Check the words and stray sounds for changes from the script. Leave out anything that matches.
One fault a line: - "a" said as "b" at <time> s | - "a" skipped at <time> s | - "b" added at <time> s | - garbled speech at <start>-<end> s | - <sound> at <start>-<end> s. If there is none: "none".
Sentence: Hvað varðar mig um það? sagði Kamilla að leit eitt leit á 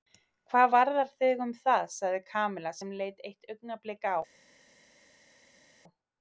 - "mig" said as "þig" at 1.2 s
- "að" said as "sem" at 2.8 s
- "leit" said as "augnablik" at 3.5 s